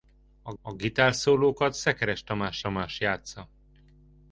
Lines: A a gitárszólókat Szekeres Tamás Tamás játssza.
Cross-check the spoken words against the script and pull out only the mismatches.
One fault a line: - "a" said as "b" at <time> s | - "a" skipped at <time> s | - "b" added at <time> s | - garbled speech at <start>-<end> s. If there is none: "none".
none